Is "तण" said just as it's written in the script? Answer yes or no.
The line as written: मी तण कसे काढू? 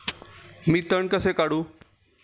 yes